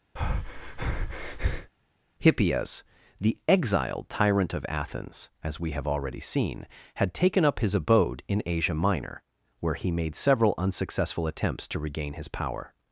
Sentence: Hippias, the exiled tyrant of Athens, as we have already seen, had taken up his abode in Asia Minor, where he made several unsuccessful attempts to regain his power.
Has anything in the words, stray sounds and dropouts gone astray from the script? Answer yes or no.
yes